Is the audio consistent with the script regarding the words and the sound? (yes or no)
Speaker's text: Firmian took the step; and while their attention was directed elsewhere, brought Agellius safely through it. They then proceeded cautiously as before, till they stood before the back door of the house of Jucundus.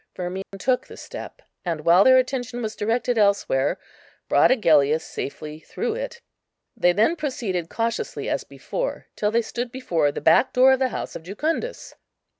no